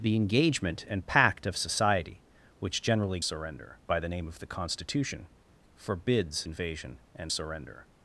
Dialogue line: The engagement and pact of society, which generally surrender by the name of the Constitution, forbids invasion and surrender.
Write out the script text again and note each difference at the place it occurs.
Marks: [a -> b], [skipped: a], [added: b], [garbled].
The engagement and pact of society, which generally surrender by the name of the Constitution, forbids invasion and surrender.